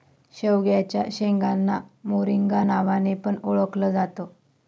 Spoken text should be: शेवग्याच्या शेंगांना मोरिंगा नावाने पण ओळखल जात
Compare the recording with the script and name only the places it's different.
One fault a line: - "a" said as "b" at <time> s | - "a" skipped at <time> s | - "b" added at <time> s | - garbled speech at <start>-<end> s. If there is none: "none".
none